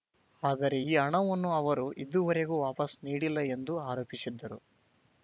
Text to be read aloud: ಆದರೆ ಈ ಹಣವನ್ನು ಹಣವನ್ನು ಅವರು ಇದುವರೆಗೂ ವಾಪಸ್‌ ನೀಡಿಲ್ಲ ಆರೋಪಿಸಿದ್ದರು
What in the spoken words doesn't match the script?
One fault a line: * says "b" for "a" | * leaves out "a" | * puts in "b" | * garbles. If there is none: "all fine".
* leaves out "ಹಣವನ್ನು"
* puts in "ಎಂದು"